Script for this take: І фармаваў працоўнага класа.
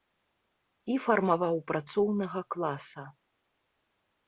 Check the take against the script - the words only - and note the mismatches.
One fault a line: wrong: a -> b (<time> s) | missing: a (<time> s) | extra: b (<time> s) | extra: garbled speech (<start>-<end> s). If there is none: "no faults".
no faults